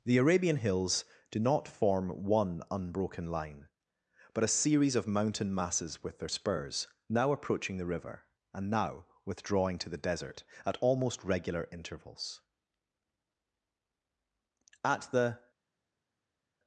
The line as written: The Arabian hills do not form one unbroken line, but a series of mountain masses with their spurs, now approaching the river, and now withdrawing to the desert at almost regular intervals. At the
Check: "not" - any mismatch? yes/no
no